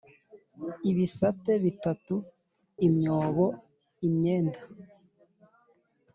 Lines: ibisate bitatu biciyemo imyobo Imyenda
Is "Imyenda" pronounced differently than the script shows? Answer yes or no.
no